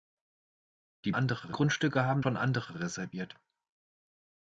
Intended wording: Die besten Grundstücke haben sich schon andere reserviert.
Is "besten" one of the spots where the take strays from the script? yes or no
yes